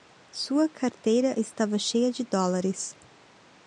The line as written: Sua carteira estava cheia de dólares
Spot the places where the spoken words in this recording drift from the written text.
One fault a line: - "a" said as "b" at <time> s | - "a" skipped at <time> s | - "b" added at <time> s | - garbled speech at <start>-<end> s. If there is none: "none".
none